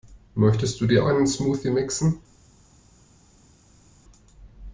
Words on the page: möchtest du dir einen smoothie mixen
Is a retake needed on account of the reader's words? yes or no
no